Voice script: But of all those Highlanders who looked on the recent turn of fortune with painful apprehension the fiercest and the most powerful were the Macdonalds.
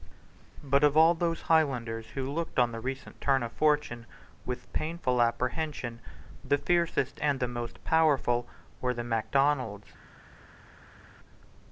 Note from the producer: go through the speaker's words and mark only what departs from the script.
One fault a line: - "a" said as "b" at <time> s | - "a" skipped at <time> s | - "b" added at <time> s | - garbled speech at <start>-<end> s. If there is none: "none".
none